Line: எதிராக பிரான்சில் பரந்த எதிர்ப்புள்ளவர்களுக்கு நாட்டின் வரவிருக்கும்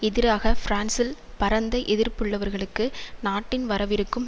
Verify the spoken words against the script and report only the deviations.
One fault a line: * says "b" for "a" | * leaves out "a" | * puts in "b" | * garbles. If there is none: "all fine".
all fine